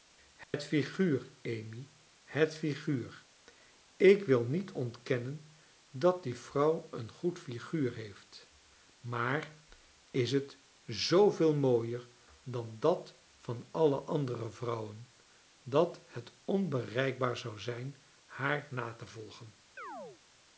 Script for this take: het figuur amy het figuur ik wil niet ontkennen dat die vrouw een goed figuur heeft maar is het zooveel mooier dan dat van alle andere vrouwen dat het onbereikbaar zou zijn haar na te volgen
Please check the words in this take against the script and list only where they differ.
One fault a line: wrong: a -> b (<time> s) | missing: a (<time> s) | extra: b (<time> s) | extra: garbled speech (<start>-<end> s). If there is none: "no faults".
no faults